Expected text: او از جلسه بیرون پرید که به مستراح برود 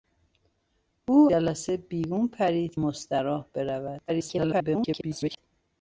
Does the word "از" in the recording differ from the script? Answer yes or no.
yes